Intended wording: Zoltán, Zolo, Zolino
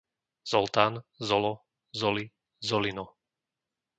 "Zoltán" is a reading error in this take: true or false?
false